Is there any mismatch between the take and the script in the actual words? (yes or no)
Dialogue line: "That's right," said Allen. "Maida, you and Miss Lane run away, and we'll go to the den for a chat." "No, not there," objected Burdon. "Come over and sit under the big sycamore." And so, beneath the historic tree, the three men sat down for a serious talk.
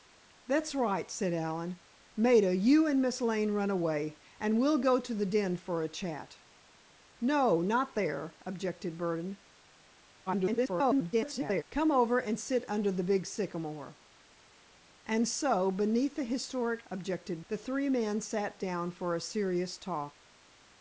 yes